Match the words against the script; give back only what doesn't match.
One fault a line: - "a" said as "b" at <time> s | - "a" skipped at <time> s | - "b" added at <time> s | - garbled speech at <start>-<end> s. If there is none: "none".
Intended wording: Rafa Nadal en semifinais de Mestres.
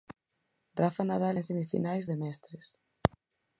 none